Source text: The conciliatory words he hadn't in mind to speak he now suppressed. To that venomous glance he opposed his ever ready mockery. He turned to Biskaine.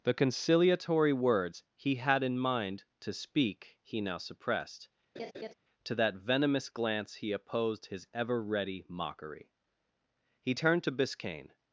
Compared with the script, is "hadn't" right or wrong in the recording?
wrong